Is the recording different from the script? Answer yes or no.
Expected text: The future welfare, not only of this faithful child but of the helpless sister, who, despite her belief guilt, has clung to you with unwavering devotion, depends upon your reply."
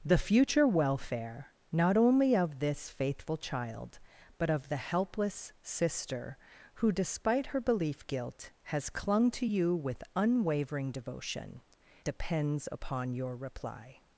no